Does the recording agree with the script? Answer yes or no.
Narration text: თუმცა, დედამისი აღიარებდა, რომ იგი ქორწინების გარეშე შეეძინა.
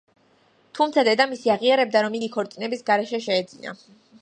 yes